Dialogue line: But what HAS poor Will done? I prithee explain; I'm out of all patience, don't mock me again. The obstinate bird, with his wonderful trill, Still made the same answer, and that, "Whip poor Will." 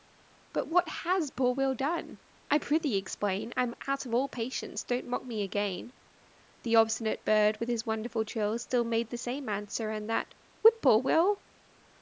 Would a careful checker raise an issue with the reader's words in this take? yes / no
no